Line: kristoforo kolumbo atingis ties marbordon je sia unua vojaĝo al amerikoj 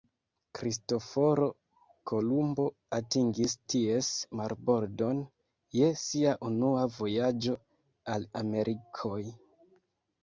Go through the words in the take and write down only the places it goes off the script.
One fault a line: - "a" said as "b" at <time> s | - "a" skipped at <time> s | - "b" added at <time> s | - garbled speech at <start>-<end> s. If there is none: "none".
none